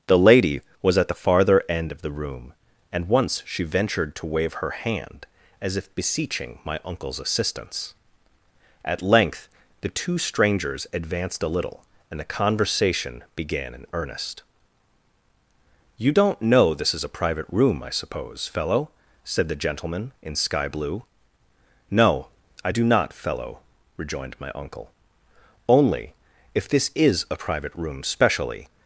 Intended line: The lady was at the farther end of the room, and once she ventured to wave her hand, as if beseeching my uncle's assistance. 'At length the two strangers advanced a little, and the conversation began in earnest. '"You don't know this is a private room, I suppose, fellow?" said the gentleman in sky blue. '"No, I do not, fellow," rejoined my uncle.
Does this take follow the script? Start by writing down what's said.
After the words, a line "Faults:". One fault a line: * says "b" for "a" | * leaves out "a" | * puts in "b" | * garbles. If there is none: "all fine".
The lady was at the farther end of the room, and once she ventured to wave her hand, as if beseeching my uncle's assistance. 'At length the two strangers advanced a little, and the conversation began in earnest. '"You don't know this is a private room, I suppose, fellow?" said the gentleman in sky blue. '"No, I do not, fellow," rejoined my uncle. "Only, if this is a private room specially
Faults:
* puts in "Only if this is a private room specially"